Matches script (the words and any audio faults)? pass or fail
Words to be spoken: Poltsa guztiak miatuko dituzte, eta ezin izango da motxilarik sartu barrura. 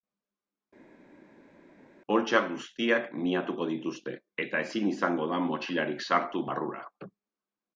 pass